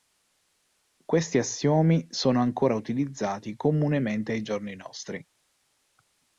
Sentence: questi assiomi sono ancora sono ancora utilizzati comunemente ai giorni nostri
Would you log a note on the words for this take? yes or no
yes